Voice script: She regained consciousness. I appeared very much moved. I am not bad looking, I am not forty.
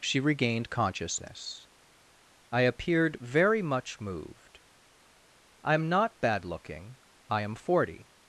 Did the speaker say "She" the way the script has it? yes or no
yes